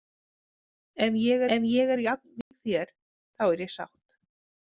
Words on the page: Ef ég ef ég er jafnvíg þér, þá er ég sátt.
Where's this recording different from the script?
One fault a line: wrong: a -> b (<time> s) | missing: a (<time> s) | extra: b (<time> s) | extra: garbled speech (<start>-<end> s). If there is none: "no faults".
no faults